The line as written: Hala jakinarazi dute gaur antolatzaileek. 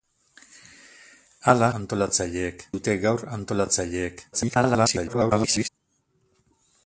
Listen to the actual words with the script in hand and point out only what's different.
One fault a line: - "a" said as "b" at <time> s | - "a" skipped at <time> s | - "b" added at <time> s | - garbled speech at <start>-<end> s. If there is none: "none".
- "jakinarazi" said as "antolatzaileek" at 1.8 s
- garbled speech at 4.3-5.7 s